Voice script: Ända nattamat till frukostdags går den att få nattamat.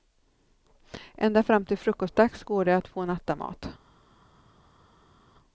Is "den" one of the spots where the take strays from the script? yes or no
yes